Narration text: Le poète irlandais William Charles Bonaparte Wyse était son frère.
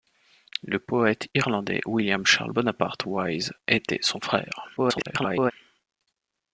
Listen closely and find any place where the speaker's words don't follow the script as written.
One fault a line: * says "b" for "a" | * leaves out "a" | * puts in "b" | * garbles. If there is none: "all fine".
* garbles